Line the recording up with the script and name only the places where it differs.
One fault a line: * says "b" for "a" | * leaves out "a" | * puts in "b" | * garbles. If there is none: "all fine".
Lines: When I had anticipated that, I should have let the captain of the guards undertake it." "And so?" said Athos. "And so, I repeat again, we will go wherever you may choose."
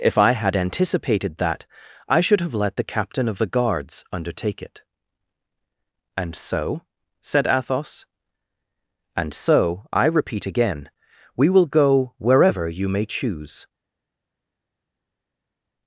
* says "If" for "When"